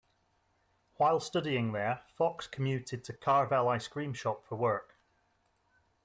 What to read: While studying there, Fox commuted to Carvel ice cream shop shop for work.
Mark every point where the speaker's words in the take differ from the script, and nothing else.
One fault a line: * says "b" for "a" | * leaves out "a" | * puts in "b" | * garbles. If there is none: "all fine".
* leaves out "shop"